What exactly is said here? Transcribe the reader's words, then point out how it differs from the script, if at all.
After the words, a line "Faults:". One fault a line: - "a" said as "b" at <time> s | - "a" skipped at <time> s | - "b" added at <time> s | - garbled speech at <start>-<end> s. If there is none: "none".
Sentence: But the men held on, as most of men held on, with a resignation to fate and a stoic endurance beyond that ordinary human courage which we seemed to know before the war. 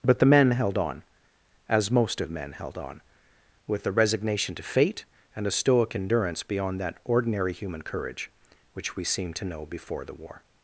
But the men held on, as most of men held on, with a resignation to fate and a stoic endurance beyond that ordinary human courage which we seemed to know before the war.
Faults:
none